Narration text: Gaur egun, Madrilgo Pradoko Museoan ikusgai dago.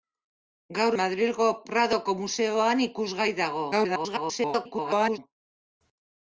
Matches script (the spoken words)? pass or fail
fail